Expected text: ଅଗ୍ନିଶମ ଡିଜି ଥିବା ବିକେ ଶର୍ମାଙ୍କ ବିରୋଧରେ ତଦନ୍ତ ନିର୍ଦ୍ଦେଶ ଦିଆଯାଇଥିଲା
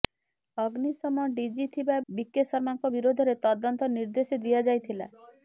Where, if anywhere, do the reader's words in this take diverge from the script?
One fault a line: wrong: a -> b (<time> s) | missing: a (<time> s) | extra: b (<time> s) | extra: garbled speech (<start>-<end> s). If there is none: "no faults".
no faults